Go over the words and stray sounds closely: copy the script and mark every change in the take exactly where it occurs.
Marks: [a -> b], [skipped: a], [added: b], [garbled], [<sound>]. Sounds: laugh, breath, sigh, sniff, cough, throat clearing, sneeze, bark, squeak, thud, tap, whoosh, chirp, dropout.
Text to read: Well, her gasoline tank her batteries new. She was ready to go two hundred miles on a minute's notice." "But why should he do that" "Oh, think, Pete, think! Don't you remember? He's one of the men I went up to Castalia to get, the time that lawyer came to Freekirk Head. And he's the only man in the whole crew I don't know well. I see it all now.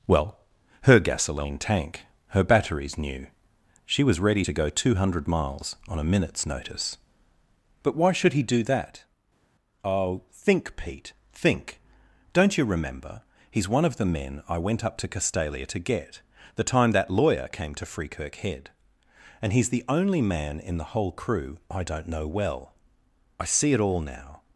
Well, her gasoline tank her batteries new. She was ready to go two hundred miles on a minute's notice." "But why should he do that" "Oh, think, Pete, think! Don't you remember? He's one of the men I went up to Castalia to get, the time that lawyer came to Freekirk Head. And he's the only man in the whole crew I don't know well. I see it all now.